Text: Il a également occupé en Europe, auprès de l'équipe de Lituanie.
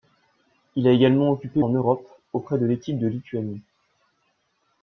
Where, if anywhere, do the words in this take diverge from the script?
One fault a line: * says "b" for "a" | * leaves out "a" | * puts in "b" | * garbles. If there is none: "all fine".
all fine